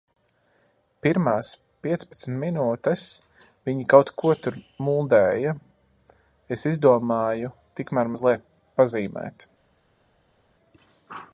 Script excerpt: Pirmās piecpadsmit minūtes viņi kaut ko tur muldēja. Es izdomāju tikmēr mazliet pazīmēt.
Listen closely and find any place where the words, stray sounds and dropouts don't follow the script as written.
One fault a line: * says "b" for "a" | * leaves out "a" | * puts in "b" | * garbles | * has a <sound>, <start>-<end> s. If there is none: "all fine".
all fine